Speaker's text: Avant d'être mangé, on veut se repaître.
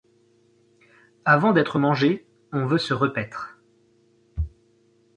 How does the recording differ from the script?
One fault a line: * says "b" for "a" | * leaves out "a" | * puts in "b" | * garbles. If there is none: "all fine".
all fine